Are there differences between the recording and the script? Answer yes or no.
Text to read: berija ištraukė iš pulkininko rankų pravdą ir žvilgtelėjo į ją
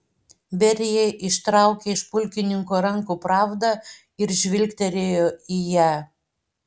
no